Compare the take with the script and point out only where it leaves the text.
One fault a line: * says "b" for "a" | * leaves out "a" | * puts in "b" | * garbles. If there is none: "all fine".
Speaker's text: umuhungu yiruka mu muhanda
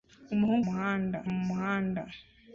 * says "muhanda" for "yiruka"